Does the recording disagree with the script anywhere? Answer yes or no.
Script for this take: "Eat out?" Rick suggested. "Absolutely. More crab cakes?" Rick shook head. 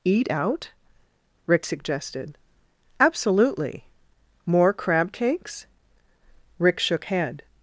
no